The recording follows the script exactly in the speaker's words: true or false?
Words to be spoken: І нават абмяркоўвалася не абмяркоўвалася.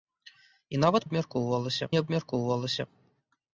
true